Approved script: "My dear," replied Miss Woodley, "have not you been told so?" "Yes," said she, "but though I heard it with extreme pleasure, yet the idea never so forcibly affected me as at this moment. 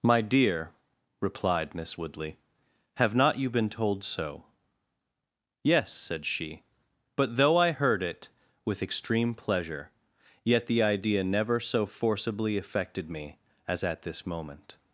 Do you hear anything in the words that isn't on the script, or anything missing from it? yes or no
no